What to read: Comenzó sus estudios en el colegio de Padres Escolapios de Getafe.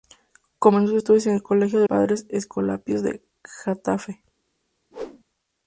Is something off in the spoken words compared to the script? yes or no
no